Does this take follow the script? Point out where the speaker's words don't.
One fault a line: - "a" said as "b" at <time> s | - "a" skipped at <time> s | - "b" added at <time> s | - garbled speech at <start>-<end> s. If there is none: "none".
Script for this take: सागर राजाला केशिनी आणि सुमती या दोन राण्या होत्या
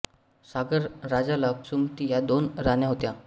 - "केशिनी आणि" skipped at 1.5 s